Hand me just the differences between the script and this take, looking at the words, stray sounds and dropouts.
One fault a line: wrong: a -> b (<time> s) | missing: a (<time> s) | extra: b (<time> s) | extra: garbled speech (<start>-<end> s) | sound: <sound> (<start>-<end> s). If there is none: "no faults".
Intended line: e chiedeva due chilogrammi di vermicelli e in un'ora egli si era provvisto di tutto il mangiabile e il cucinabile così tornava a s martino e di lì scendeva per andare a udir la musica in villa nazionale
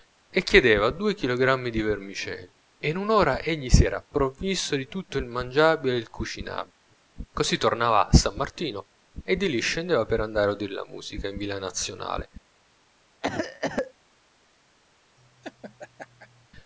sound: cough (13.2-13.9 s)
sound: laugh (15.2-16.5 s)